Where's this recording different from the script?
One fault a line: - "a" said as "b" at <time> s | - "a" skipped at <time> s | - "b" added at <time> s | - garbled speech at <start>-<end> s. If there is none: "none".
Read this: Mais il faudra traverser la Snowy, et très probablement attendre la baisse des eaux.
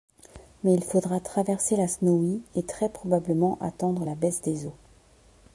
none